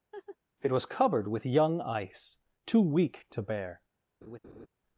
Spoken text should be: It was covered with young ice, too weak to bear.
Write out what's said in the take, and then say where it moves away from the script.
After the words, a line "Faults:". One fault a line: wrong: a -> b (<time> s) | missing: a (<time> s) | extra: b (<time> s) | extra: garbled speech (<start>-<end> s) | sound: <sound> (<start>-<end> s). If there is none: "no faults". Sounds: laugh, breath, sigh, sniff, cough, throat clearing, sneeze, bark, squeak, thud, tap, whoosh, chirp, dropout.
It was covered with young ice, too weak to bear.
Faults:
sound: laugh (0.1-0.4 s)
sound: laugh (4.2-4.7 s)